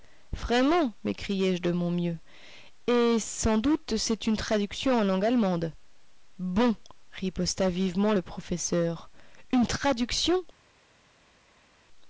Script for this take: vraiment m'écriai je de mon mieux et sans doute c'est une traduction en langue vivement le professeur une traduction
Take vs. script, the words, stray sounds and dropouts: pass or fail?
fail